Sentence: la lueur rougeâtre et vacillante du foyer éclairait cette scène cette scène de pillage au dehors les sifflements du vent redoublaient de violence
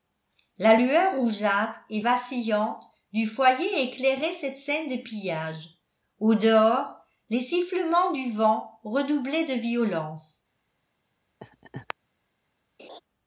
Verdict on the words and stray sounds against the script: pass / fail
fail